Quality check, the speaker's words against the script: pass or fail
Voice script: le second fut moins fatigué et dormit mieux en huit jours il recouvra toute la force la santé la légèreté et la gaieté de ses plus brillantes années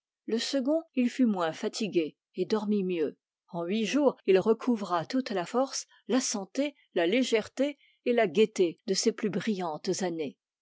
fail